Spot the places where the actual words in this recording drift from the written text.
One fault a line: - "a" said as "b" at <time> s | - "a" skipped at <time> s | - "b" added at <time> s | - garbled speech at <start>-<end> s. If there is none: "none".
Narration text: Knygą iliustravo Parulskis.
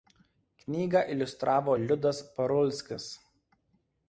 - "Liudas" added at 1.8 s